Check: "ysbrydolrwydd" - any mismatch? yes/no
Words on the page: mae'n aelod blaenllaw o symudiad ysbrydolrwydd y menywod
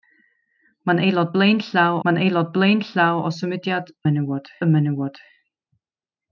yes